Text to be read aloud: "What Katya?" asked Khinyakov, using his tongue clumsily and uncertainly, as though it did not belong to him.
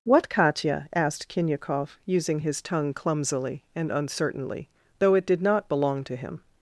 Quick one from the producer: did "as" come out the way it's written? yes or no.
no